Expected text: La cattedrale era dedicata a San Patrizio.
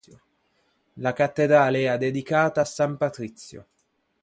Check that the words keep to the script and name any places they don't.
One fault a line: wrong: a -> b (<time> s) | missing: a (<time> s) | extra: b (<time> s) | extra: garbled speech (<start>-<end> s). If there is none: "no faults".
no faults